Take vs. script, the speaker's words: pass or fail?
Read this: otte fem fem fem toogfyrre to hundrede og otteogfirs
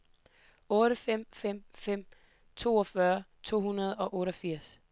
pass